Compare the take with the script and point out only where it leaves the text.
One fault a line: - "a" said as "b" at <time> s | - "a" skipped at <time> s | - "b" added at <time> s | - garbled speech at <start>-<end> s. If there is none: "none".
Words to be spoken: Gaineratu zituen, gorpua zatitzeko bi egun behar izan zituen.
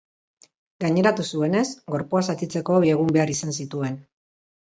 - "zituen" said as "zuenez" at 1.3 s